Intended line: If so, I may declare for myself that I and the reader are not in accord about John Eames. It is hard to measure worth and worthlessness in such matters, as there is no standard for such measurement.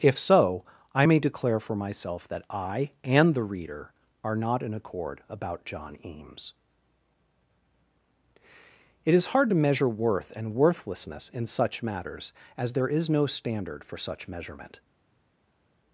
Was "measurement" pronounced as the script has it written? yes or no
yes